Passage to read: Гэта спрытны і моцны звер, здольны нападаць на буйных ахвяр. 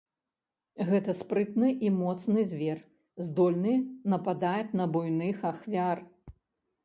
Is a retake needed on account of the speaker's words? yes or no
no